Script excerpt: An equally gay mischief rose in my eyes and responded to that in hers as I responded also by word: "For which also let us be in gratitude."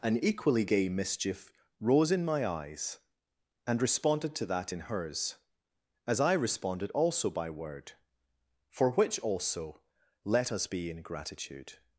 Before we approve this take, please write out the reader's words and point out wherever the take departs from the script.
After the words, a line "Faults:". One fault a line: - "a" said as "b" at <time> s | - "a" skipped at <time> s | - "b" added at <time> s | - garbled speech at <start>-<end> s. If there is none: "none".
An equally gay mischief rose in my eyes and responded to that in hers as I responded also by word: "For which also let us be in gratitude."
Faults:
none